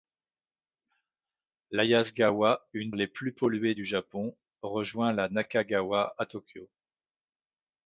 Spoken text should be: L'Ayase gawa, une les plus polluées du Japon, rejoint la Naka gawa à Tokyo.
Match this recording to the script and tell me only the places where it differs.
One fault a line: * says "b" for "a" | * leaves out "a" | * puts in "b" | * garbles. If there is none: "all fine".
all fine